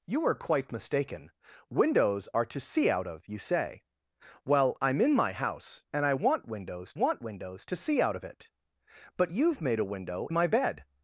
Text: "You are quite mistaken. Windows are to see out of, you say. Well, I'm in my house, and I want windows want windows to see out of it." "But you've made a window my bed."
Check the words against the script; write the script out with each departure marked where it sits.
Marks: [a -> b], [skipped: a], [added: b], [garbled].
"You are quite mistaken. Windows are to see out of, you say. Well, I'm in my house, and I want windows want windows to see out of it." "But you've made a window my bed."